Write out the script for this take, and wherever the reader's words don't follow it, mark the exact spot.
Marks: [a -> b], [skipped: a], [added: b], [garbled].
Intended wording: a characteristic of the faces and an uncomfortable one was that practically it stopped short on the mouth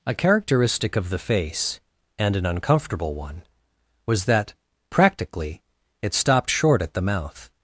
a characteristic of the [faces -> face] and an uncomfortable one was that practically it stopped short [on -> at] the mouth